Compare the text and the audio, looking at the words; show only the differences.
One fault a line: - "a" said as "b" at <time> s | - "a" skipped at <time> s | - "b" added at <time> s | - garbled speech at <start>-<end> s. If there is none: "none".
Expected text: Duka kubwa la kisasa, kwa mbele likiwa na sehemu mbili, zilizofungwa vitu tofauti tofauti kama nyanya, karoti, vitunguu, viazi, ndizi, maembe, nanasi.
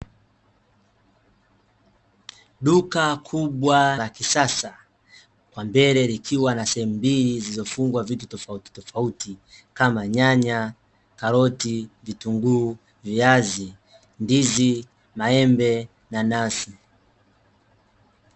none